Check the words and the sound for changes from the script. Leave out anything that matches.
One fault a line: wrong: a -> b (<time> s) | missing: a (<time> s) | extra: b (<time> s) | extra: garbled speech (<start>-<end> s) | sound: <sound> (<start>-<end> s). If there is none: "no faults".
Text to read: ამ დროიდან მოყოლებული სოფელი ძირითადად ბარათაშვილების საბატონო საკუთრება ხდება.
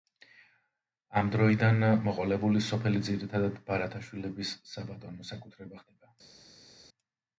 no faults